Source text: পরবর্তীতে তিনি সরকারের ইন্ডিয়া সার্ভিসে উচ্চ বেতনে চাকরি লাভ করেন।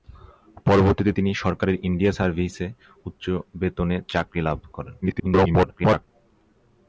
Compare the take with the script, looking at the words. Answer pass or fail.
fail